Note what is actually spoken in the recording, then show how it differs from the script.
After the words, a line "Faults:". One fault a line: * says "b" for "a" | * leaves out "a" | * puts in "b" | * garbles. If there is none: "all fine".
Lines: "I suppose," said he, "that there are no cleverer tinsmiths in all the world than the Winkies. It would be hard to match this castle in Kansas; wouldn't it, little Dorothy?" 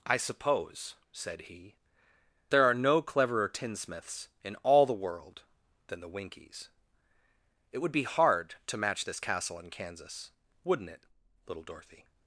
"I suppose," said he, "there are no cleverer tinsmiths in all the world than the Winkies. It would be hard to match this castle in Kansas; wouldn't it, little Dorothy?"
Faults:
* leaves out "that"